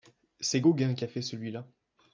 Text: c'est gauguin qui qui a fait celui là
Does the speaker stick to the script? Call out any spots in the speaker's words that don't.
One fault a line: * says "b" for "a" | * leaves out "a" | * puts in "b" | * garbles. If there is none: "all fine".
* leaves out "qui"